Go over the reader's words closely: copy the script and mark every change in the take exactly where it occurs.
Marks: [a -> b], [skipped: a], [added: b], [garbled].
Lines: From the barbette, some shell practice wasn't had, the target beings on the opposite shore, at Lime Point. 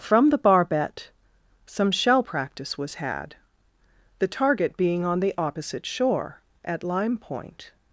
From the barbette, some shell practice [wasn't -> was] had, the target [beings -> being] on the opposite shore, at Lime Point.